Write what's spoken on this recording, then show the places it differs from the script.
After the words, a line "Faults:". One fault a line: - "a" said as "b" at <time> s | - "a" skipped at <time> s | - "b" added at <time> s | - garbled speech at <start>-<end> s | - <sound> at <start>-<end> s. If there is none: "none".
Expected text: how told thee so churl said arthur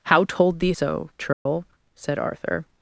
how told thee so churl said arthur
Faults:
- dropout at 1.3-1.5 s